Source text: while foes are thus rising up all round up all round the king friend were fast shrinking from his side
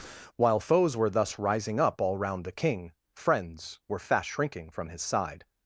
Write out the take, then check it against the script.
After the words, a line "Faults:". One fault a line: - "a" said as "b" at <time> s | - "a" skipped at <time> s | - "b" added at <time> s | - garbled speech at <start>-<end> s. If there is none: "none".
while foes were thus rising up all round the king friends were fast shrinking from his side
Faults:
- "are" said as "were" at 0.9 s
- "up all round" skipped at 2.4 s
- "friend" said as "friends" at 3.2 s